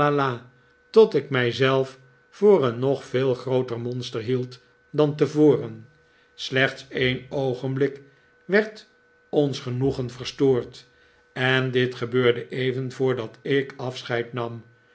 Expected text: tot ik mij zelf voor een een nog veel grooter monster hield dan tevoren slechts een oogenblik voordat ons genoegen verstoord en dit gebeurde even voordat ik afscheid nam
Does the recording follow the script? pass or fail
fail